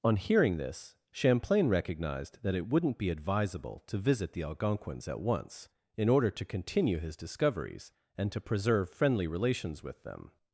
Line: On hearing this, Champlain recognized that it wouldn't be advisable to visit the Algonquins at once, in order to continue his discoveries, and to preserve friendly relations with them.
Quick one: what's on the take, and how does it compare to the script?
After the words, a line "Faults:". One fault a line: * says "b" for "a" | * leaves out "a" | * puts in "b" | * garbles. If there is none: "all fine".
On hearing this, Champlain recognized that it wouldn't be advisable to visit the Algonquins at once, in order to continue his discoveries, and to preserve friendly relations with them.
Faults:
all fine